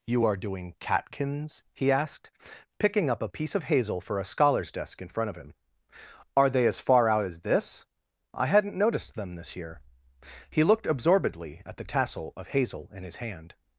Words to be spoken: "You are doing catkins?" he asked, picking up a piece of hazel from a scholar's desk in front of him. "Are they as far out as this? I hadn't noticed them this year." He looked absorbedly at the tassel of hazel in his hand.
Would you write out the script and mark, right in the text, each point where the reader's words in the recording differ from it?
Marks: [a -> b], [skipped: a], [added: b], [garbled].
"You are doing catkins?" he asked, picking up a piece of hazel [from -> for] a scholar's desk in front of him. "Are they as far out as this? I hadn't noticed them this year." He looked absorbedly at the tassel of hazel in his hand.